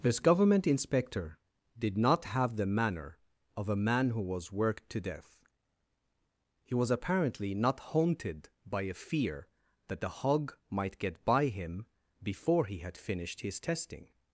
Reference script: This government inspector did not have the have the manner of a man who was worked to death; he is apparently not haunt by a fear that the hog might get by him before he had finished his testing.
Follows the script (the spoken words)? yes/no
no